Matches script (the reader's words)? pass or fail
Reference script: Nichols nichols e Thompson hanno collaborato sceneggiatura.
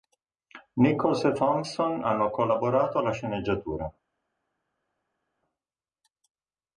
fail